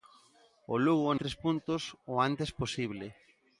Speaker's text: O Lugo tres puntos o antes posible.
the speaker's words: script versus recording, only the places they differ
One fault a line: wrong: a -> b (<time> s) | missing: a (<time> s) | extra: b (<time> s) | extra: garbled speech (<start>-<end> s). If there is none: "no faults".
no faults